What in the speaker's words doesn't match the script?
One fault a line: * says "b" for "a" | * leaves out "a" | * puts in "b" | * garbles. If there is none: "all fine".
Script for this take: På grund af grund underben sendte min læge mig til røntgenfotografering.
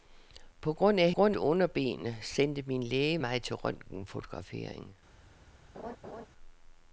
all fine